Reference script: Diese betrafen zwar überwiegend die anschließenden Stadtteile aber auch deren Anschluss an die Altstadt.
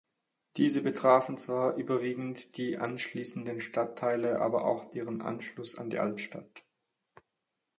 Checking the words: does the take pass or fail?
pass